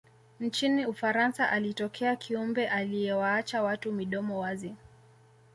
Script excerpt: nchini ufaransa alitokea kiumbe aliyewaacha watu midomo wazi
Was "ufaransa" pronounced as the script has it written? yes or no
yes